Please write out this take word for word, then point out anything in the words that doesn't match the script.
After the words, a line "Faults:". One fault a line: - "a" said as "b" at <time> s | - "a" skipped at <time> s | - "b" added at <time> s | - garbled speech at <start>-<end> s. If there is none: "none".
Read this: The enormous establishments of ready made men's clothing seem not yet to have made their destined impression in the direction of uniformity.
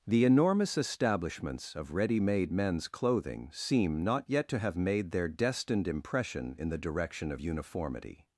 The enormous establishments of ready made men's clothing seem not yet to have made their destined impression in the direction of uniformity.
Faults:
none